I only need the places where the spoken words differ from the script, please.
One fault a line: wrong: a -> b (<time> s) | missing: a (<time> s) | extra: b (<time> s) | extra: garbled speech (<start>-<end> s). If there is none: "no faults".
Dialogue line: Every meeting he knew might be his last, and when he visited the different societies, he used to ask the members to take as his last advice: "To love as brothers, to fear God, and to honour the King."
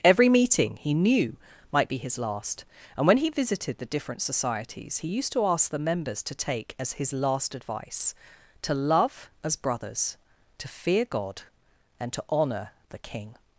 no faults